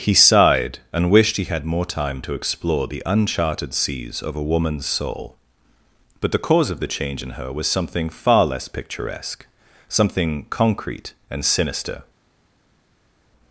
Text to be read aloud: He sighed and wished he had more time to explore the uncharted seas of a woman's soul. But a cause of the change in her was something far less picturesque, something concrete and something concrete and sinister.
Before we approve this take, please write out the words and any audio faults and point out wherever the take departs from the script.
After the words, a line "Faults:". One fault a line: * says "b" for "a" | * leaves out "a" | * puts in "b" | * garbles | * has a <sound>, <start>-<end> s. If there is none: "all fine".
He sighed and wished he had more time to explore the uncharted seas of a woman's soul. But the cause of the change in her was something far less picturesque, something concrete and sinister.
Faults:
* says "the" for "a"
* leaves out "something concrete and"